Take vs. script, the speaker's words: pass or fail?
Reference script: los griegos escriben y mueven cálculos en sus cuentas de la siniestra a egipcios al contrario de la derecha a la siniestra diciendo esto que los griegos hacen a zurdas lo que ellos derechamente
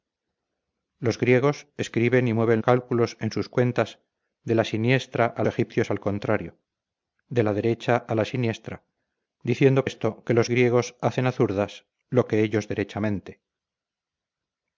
pass